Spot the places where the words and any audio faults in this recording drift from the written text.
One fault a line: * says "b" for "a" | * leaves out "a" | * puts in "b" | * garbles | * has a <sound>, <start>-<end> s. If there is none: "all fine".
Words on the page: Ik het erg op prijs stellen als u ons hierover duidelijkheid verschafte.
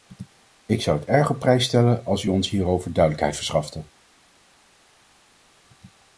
* puts in "zou"